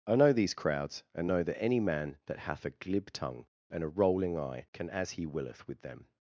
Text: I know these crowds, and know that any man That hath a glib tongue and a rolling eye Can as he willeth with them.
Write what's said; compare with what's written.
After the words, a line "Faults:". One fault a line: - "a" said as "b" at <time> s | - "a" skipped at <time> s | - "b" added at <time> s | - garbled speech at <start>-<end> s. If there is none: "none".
I know these crowds, and know that any man That hath a glib tongue and a rolling eye Can as he willeth with them.
Faults:
none